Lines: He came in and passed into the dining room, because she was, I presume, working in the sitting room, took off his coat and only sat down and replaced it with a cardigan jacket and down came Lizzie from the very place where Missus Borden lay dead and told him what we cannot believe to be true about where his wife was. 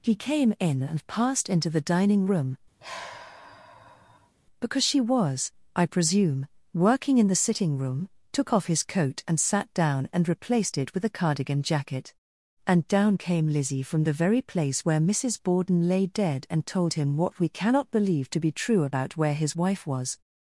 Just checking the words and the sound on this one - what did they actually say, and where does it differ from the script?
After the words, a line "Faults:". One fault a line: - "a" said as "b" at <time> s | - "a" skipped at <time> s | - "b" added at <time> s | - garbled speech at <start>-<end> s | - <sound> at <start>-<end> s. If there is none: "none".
He came in and passed into the dining room, because she was, I presume, working in the sitting room, took off his coat and sat down and replaced it with a cardigan jacket and down came Lizzie from the very place where Missus Borden lay dead and told him what we cannot believe to be true about where his wife was.
Faults:
- sigh at 2.8-4.3 s
- "only" skipped at 9.4 s